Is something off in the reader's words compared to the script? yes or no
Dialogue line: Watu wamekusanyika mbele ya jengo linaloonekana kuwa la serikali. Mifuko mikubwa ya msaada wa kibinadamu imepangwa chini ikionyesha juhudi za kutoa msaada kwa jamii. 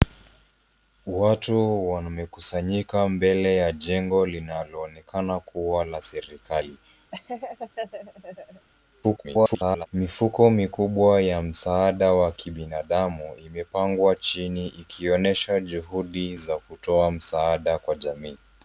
yes